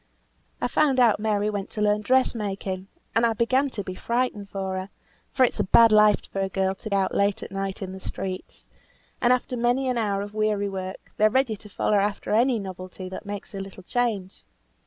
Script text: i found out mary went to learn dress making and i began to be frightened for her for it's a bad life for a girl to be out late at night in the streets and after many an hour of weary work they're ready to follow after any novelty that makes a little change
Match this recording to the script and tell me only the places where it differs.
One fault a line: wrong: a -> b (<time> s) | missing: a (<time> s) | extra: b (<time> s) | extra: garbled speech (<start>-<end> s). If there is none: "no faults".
missing: be (6.9 s)